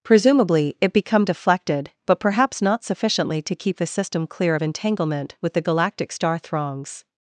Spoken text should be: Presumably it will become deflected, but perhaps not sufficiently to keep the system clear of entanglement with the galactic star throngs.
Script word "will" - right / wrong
wrong